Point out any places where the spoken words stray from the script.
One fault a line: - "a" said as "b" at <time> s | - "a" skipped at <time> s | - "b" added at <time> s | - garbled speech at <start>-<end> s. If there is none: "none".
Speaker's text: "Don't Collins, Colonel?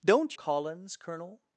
none